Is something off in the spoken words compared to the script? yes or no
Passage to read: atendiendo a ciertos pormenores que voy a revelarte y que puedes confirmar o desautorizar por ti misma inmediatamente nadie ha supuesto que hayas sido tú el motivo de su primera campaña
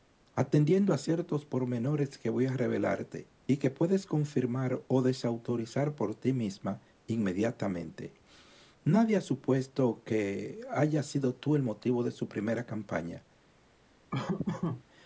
no